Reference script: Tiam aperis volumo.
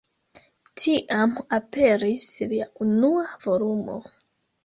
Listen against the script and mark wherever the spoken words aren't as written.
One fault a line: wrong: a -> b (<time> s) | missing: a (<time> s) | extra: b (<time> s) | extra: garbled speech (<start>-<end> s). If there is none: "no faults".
extra: lia unua (2.5 s)